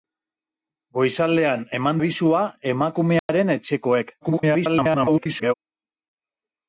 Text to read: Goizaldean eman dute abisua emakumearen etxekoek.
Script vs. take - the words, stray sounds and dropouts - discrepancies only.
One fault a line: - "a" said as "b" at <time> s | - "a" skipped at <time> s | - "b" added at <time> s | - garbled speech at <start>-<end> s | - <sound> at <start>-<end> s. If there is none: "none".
- "dute" skipped at 2.0 s
- dropout at 3.2-3.3 s
- garbled speech at 4.2-5.5 s